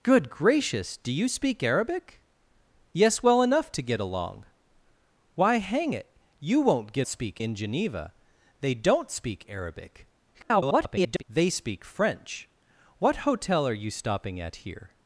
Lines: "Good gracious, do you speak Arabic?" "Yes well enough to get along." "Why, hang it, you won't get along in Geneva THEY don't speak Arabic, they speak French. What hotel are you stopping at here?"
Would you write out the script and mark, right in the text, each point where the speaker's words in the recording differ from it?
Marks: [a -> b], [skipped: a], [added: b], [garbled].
"Good gracious, do you speak Arabic?" "Yes well enough to get along." "Why, hang it, you won't get [along -> speak] in Geneva THEY don't speak Arabic, [garbled] they speak French. What hotel are you stopping at here?"